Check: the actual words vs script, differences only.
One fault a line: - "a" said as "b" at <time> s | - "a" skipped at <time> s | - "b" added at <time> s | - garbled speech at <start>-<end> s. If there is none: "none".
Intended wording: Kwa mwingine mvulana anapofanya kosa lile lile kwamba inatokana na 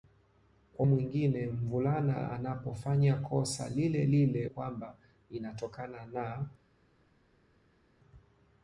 none